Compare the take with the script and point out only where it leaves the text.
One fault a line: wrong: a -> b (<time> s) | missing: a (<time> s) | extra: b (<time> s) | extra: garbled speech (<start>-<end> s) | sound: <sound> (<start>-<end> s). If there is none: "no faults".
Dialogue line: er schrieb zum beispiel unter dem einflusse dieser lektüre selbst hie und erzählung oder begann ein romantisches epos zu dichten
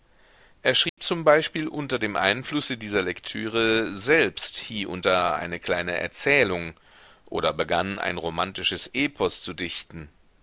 sound: dropout (0.9-1.0 s)
extra: da eine kleine (5.0 s)